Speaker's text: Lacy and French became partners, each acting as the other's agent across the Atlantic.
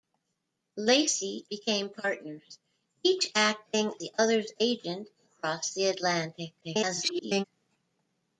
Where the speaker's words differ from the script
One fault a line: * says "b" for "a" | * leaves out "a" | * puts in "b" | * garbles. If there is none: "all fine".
* leaves out "and French"
* leaves out "as"
* garbles